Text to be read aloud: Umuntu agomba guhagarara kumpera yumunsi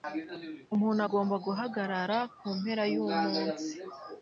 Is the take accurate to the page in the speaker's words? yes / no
yes